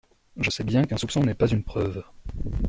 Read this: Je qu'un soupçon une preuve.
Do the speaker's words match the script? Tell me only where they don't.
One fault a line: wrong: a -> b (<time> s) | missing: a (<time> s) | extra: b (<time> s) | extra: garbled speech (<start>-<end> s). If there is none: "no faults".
extra: sais bien (0.5 s)
extra: n'est pas (1.2 s)